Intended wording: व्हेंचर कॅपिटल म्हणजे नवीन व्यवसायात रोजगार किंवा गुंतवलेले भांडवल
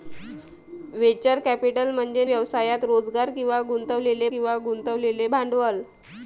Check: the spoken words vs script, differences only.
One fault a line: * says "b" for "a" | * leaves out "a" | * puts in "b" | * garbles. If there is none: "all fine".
* leaves out "नवीन"
* puts in "किंवा गुंतवलेले"